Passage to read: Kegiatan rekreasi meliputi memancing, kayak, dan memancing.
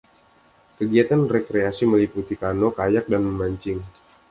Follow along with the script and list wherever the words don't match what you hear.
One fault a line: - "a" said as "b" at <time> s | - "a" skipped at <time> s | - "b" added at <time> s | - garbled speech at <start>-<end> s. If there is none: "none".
- "memancing" said as "kano" at 2.3 s